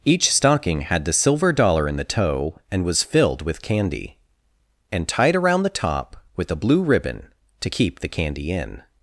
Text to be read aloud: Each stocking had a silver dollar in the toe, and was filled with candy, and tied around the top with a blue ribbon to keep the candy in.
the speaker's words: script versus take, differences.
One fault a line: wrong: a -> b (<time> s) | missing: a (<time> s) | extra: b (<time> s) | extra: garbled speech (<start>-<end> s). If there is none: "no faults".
wrong: a -> the (1.1 s)